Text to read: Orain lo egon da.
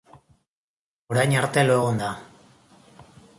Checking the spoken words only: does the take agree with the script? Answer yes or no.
no